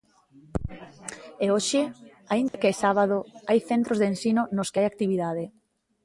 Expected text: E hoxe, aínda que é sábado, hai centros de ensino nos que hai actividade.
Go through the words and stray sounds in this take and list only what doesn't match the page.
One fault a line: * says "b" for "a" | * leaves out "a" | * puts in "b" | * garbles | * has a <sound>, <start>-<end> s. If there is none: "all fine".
* has a dropout, 2.5-2.5 s